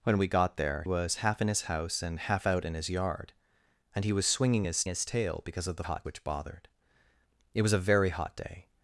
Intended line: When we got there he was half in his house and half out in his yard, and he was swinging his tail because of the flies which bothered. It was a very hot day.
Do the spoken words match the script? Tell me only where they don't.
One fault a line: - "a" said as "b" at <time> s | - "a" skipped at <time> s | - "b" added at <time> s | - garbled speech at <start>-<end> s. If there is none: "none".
- "he" skipped at 0.8 s
- "his" added at 4.9 s
- "flies" said as "hot" at 5.8 s